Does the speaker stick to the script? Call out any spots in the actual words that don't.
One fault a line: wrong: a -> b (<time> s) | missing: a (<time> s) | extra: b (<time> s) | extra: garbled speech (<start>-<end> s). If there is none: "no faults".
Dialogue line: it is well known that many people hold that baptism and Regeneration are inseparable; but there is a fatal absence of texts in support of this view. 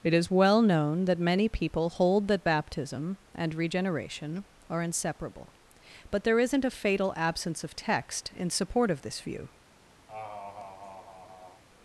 wrong: is -> isn't (6.4 s)
wrong: texts -> text (7.7 s)